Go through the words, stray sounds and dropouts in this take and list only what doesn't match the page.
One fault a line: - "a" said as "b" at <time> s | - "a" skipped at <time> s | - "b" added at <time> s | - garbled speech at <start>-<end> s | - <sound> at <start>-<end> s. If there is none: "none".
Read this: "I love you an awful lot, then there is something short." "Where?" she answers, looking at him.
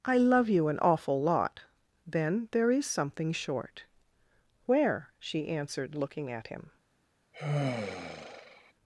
- "answers" said as "answered" at 5.5 s
- sigh at 7.3-8.7 s